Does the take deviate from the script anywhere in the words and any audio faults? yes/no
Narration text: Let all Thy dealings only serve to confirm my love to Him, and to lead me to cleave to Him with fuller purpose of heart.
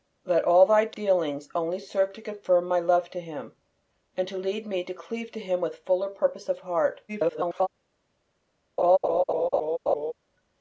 yes